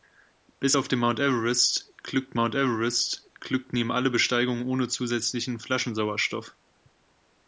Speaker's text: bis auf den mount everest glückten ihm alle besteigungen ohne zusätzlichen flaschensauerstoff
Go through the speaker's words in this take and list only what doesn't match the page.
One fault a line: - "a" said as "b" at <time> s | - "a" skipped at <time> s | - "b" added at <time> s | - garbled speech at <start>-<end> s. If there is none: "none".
- "mount everest glückten" added at 2.3 s